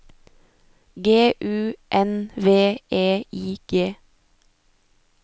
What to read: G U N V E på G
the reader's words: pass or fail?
fail